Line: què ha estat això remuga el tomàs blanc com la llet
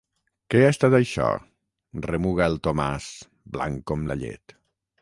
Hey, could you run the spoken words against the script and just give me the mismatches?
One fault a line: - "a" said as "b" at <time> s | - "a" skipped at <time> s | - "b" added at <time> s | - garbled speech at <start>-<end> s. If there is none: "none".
none